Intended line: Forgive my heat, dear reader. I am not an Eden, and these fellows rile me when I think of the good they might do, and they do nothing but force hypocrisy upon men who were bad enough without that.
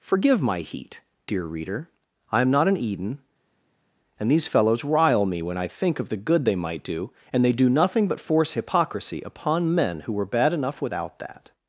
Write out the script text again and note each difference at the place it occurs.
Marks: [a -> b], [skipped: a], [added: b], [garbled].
Forgive my heat, dear reader. I am not an Eden, and these fellows rile me when I think of the good they might do, and they do nothing but force hypocrisy upon men who were bad enough without that.